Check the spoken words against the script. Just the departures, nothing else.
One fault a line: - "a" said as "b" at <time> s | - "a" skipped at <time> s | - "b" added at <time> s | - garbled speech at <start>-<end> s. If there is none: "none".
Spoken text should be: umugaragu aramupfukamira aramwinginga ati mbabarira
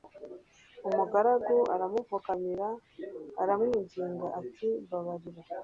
none